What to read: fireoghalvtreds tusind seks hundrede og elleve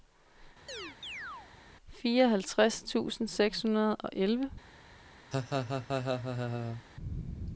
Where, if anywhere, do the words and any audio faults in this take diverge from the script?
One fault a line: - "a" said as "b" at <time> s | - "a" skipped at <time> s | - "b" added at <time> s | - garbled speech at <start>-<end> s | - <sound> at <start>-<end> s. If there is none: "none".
- chirp at 0.7-1.5 s
- laugh at 5.3-6.8 s